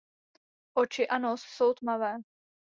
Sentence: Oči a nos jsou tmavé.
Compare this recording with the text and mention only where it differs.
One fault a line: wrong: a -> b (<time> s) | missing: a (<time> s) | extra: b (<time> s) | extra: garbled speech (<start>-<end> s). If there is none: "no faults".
no faults